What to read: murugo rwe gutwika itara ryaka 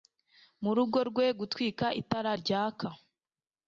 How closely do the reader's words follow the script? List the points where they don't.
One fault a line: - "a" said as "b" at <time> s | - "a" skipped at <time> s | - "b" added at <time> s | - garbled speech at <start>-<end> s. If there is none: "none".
none